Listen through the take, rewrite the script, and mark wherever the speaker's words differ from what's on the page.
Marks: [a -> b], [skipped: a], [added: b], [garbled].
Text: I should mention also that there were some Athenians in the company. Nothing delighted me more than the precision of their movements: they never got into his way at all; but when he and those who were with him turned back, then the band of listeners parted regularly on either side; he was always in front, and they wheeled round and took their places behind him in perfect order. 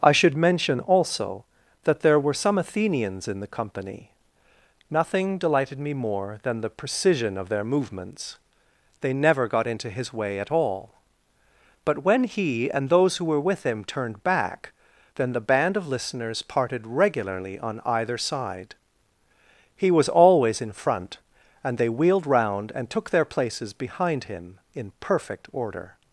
I should mention also that there were some Athenians in the company. Nothing delighted me more than the precision of their movements: they never got into his way at all; but when he and those who were with him turned back, then the band of listeners parted regularly on either side; he was always in front, and they wheeled round and took their places behind him in perfect order.